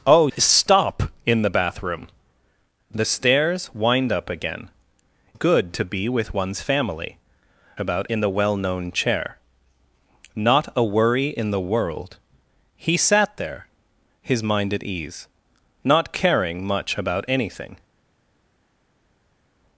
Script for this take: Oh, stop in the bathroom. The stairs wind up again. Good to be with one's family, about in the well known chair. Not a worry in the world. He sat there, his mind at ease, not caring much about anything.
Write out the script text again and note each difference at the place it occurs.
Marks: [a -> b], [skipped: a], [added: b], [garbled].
Oh, stop in the bathroom. The stairs wind up again. Good to be with one's family, about in the well known chair. Not a worry in the world. He sat there, his mind at ease, not caring much about anything.